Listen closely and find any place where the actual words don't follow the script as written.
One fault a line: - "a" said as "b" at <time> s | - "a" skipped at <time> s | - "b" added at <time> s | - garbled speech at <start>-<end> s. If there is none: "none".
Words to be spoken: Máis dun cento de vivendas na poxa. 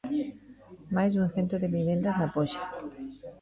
none